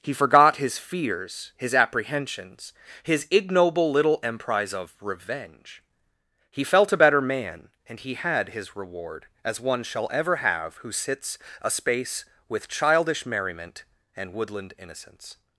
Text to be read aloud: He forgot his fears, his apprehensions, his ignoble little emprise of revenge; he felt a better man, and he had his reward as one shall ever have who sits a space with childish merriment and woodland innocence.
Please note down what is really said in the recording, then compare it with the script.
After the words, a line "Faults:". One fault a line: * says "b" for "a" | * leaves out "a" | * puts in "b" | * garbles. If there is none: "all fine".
He forgot his fears, his apprehensions, his ignoble little emprise of revenge; he felt a better man, and he had his reward as one shall ever have who sits a space with childish merriment and woodland innocence.
Faults:
all fine